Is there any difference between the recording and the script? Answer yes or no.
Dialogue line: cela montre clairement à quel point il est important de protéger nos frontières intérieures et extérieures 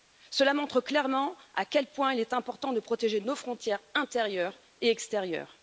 no